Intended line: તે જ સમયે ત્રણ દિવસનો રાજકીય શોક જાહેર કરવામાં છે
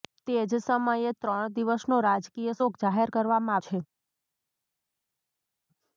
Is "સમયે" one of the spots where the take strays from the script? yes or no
no